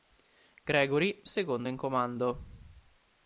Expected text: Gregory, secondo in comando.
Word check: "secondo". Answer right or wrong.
right